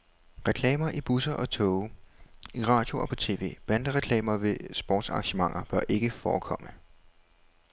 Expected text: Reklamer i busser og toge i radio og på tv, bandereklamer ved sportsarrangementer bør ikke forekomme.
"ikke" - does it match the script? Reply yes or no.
yes